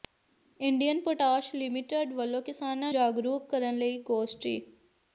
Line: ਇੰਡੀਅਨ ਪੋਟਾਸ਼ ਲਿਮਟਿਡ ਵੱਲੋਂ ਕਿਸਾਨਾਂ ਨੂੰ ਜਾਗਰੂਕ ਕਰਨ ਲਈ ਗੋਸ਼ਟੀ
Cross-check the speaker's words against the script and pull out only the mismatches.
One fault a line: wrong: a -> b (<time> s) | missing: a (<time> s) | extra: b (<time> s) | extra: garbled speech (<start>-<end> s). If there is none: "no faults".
missing: ਨੂੰ (2.9 s)